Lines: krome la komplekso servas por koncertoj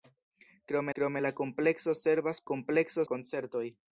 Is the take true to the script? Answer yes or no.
no